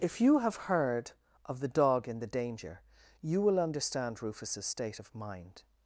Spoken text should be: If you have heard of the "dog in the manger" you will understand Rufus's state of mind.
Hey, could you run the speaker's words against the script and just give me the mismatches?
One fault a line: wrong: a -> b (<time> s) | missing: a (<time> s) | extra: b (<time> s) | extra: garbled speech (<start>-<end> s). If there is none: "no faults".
wrong: manger -> danger (2.2 s)